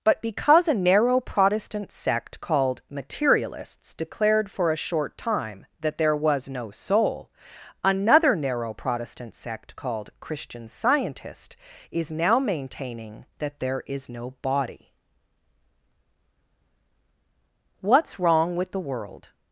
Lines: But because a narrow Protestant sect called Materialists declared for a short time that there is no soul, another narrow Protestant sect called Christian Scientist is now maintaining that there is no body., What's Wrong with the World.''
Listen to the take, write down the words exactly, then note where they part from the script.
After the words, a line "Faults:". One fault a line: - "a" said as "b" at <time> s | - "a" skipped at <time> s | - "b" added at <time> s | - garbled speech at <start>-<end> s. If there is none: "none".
But because a narrow Protestant sect called Materialists declared for a short time that there was no soul, another narrow Protestant sect called Christian Scientist is now maintaining that there is no body., What's Wrong with the World.''
Faults:
- "is" said as "was" at 6.2 s